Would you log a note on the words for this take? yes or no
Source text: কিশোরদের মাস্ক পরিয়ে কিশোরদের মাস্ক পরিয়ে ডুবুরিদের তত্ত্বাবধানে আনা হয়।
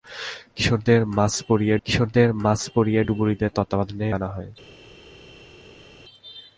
no